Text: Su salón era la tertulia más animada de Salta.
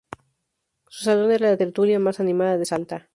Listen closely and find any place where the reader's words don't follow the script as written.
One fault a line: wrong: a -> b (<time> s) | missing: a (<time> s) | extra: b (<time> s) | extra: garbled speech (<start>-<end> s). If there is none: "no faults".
no faults